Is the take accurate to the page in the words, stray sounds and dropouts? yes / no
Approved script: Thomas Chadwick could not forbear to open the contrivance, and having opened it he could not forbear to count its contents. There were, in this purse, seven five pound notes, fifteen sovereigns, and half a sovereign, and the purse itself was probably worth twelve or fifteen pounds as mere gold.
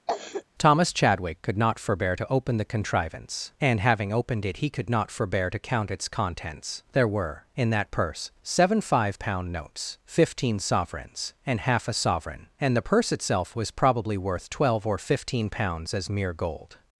no